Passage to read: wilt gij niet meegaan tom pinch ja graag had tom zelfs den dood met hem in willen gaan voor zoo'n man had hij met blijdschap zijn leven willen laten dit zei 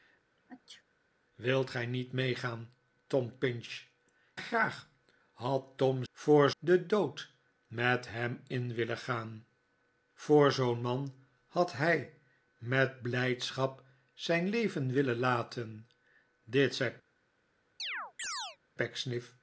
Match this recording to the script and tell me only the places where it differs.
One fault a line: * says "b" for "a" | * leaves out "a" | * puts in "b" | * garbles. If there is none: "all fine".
* leaves out "ja"
* says "voor" for "zelfs"